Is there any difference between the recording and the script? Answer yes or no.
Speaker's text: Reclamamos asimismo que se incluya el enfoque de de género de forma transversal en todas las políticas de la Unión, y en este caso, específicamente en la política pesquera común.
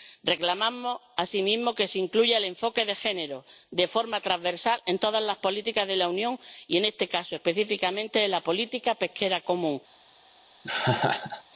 yes